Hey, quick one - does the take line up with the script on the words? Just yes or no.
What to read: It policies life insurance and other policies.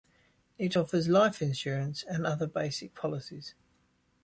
no